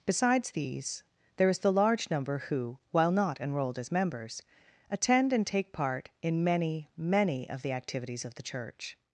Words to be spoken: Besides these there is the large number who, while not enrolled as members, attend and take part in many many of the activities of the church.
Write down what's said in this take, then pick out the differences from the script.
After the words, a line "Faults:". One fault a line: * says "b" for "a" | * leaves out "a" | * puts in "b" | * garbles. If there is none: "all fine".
Besides these there is the large number who, while not enrolled as members, attend and take part in many many of the activities of the church.
Faults:
all fine